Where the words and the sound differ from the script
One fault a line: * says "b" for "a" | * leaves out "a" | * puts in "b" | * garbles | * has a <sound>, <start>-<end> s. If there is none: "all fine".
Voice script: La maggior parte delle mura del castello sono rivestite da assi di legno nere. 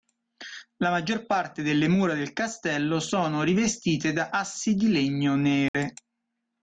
* has a dropout, 5.7-5.7 s